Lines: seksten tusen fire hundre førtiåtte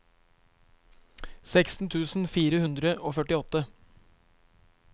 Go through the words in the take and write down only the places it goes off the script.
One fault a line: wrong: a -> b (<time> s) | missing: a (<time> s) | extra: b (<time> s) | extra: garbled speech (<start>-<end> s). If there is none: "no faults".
extra: og (3.0 s)